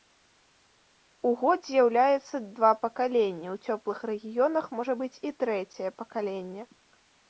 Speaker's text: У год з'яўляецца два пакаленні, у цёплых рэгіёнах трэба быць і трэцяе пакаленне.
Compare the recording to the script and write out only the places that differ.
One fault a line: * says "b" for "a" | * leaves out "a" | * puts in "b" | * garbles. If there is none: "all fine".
* says "можа" for "трэба"